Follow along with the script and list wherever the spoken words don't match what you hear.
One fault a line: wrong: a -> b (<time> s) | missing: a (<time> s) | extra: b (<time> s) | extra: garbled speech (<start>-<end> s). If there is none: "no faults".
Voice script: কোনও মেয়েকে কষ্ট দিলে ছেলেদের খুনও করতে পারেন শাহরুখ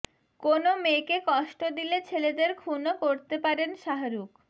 no faults